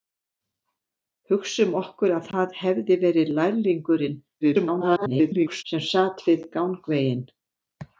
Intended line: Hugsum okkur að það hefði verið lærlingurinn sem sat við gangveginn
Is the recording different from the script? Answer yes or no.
yes